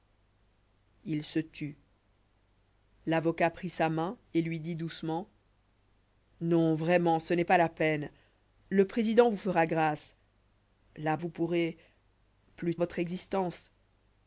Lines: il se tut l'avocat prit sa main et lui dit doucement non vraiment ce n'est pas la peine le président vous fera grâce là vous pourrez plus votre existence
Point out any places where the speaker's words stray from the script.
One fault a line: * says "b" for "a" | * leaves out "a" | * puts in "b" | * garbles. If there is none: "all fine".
all fine